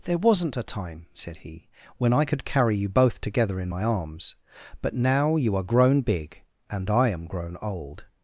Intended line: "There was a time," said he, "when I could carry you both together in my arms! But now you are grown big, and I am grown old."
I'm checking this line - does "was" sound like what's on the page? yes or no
no